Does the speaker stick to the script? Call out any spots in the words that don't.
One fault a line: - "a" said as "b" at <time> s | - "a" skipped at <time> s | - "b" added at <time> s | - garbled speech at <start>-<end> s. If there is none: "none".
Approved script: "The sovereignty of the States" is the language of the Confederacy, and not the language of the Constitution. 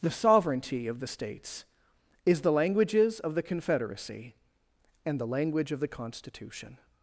- "language" said as "languages" at 2.5 s
- "not" skipped at 5.2 s